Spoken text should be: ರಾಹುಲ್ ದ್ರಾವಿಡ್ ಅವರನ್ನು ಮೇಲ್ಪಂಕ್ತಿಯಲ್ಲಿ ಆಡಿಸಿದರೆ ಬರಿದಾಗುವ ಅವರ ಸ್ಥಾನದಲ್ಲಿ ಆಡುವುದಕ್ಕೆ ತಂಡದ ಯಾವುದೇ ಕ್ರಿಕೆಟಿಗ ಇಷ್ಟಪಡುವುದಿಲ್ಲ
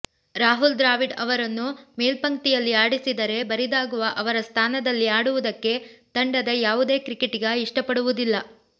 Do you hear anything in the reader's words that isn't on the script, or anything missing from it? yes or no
no